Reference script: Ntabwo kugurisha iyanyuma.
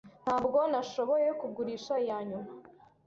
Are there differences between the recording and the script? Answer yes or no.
yes